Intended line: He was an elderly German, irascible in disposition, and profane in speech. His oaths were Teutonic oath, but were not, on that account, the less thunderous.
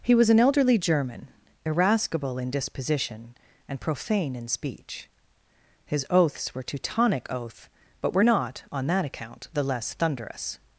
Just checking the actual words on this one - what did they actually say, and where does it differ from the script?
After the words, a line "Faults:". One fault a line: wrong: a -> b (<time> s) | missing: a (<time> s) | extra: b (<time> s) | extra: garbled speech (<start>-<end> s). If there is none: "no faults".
He was an elderly German, irascible in disposition, and profane in speech. His oaths were Teutonic oath, but were not, on that account, the less thunderous.
Faults:
no faults